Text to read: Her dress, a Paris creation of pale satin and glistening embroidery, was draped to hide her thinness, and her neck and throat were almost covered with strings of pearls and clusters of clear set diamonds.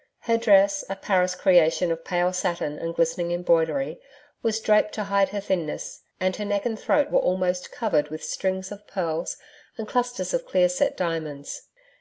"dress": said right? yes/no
yes